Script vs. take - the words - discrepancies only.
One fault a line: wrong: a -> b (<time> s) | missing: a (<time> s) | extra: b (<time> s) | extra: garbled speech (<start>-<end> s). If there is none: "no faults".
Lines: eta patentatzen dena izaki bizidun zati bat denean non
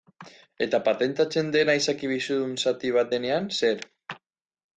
wrong: non -> zer (3.6 s)